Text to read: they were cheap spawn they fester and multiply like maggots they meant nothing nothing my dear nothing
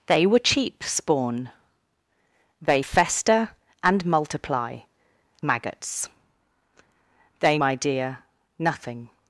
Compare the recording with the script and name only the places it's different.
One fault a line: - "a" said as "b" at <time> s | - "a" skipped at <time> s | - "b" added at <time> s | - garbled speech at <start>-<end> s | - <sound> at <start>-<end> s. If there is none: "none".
- "like" skipped at 4.8 s
- "meant nothing nothing" skipped at 7.6 s